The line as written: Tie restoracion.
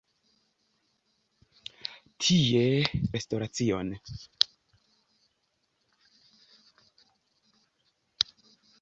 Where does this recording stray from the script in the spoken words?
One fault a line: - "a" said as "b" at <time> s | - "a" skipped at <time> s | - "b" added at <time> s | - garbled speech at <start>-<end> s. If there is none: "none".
none